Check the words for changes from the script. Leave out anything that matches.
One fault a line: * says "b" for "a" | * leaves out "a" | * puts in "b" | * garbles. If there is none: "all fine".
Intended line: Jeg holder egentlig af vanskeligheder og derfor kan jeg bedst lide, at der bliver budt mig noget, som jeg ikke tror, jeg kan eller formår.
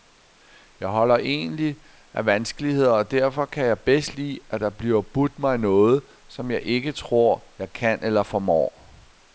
all fine